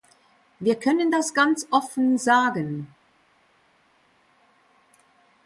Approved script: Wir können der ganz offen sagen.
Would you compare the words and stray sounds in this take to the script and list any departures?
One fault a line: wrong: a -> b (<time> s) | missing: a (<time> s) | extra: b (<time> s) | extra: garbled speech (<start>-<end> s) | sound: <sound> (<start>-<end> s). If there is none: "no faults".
wrong: der -> das (1.1 s)